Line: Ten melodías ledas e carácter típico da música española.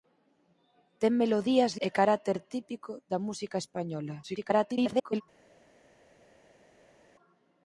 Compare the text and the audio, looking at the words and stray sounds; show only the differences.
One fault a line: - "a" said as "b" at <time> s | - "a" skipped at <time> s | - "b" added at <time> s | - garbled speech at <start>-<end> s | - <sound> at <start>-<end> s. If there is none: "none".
- "ledas" skipped at 1.7 s
- garbled speech at 4.2-5.2 s